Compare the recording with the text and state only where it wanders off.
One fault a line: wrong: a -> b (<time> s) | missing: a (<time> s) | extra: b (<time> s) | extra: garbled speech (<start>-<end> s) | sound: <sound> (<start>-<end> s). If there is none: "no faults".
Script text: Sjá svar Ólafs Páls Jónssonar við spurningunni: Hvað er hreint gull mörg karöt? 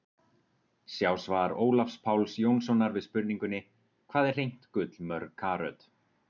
no faults